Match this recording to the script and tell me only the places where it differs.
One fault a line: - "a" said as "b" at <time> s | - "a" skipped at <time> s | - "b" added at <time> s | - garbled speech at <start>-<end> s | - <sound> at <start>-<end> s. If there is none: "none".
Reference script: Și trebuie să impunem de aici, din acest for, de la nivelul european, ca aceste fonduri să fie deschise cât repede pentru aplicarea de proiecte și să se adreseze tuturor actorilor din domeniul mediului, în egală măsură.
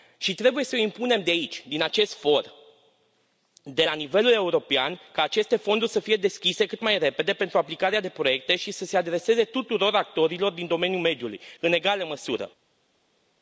- "mai" added at 6.8 s